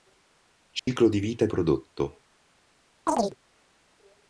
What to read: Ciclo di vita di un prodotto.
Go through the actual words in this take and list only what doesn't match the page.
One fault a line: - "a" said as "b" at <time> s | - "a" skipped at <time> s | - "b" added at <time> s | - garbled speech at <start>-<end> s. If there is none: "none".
- "un" skipped at 1.5 s